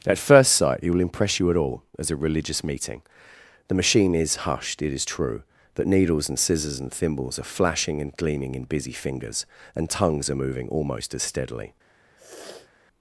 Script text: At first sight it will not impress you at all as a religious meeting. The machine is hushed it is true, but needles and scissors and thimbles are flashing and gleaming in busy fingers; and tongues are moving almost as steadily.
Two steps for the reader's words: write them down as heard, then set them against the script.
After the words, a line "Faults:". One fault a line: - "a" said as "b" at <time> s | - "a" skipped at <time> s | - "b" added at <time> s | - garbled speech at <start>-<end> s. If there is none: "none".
At first sight it will impress you at all as a religious meeting. The machine is hushed it is true, but needles and scissors and thimbles are flashing and gleaming in busy fingers; and tongues are moving almost as steadily.
Faults:
- "not" skipped at 1.0 s